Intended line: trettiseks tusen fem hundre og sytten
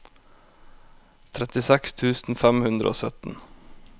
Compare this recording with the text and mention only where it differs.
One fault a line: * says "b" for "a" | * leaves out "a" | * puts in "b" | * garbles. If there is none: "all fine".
all fine